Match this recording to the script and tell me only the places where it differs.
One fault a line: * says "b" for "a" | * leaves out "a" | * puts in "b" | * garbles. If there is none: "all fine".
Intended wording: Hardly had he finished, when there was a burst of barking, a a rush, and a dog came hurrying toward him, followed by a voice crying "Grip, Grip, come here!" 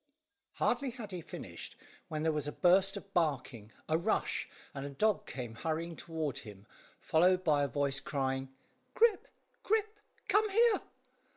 * leaves out "a"